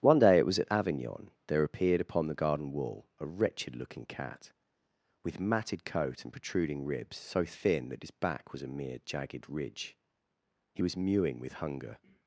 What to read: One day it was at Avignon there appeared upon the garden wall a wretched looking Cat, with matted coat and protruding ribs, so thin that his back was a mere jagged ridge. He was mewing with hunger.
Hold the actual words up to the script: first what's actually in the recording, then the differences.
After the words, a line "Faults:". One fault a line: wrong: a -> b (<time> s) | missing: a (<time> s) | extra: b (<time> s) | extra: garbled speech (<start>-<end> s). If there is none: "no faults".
One day it was at Avignon there appeared upon the garden wall a wretched looking Cat, with matted coat and protruding ribs, so thin that his back was a mere jagged ridge. He was mewing with hunger.
Faults:
no faults